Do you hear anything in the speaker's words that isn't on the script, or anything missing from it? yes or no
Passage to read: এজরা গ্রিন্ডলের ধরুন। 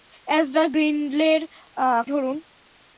no